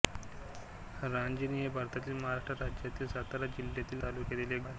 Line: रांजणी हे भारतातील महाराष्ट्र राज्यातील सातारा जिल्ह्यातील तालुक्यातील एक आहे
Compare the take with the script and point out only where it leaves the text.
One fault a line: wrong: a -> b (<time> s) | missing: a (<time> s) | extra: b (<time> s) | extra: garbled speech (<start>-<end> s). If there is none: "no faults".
no faults